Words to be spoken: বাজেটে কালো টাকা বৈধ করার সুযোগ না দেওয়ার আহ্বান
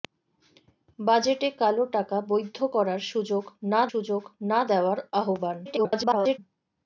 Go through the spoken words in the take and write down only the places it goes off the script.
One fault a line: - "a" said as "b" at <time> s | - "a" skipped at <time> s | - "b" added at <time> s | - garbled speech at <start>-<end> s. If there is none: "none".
- "সুযোগ না" added at 3.9 s
- garbled speech at 5.7-6.4 s